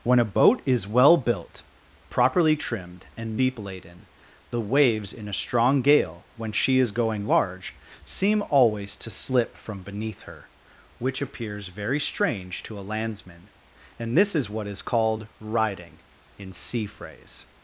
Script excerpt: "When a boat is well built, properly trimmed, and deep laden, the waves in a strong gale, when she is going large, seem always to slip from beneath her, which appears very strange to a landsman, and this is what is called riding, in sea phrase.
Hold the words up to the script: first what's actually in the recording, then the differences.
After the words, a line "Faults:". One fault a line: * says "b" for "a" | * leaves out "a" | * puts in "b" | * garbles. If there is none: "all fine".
"When a boat is well built, properly trimmed, and deep laden, the waves in a strong gale, when she is going large, seem always to slip from beneath her, which appears very strange to a landsman, and this is what is called riding, in sea phrase.
Faults:
all fine